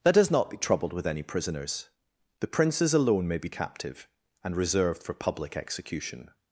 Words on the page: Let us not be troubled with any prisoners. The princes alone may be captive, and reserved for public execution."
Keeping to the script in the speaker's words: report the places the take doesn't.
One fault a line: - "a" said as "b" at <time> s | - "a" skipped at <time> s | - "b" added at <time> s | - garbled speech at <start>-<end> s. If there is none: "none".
none